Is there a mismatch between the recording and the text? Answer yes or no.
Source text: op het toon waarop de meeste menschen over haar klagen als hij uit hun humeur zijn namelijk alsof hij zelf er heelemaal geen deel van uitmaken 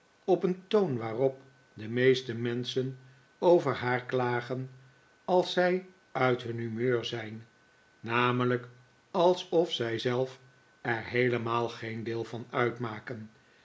yes